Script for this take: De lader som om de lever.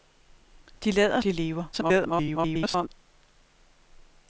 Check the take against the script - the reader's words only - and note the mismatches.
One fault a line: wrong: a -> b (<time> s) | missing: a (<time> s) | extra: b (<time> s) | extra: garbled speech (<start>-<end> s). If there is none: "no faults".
missing: som om (1.2 s)
extra: garbled speech (1.7-2.9 s)